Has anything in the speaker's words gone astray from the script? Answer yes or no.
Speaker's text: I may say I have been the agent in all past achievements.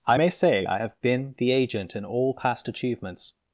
no